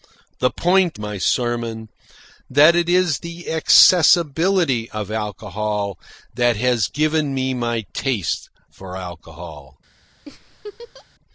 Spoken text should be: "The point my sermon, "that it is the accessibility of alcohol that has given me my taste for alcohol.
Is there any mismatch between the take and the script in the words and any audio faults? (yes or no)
yes